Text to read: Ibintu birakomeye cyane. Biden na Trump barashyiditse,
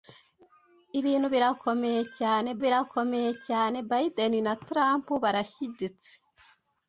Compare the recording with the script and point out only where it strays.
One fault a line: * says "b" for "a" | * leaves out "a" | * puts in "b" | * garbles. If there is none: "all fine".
* puts in "birakomeye cyane"